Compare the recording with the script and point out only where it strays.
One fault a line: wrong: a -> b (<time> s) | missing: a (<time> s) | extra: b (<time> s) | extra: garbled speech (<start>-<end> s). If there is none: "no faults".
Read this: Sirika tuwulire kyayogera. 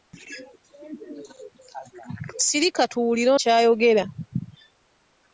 no faults